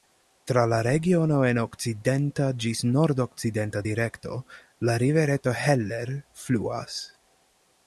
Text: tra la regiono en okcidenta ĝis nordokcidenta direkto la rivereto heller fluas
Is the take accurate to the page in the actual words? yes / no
yes